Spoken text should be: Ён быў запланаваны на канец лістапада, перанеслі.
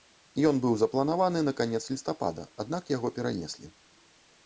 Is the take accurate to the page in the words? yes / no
no